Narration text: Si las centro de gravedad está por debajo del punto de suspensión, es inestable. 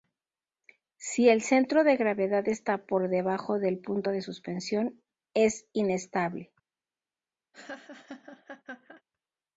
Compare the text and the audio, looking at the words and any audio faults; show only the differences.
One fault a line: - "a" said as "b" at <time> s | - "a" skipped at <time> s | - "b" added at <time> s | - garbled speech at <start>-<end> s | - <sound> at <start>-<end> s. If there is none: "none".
- "las" said as "el" at 1.3 s
- laugh at 7.5-9.0 s